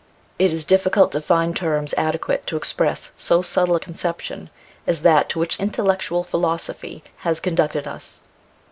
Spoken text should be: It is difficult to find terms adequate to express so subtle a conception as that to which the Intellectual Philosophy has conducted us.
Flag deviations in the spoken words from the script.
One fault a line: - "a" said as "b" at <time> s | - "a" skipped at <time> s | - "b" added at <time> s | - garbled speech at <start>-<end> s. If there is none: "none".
- "the" skipped at 5.6 s